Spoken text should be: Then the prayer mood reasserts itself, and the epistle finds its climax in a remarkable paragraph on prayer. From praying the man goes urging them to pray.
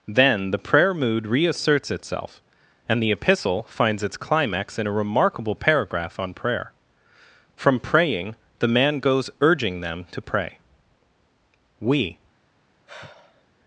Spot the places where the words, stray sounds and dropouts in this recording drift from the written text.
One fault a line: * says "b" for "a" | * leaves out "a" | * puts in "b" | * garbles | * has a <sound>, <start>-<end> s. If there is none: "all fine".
* puts in "We"
* has a sigh, 12.9-13.4 s